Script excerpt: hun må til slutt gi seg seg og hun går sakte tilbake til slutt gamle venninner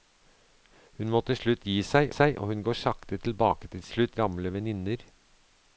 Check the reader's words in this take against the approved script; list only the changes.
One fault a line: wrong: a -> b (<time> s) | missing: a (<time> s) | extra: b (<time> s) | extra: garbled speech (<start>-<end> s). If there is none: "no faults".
no faults